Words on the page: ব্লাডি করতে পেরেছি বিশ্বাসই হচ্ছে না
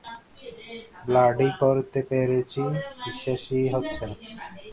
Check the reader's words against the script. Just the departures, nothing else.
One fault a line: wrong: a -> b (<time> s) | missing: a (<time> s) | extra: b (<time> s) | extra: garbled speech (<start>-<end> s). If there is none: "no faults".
no faults